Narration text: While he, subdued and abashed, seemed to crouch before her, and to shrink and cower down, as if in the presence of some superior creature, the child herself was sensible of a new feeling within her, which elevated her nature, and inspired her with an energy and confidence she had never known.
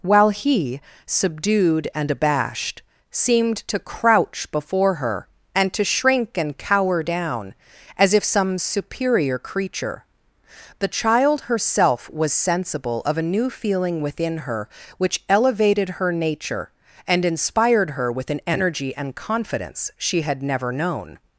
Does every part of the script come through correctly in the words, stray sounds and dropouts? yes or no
no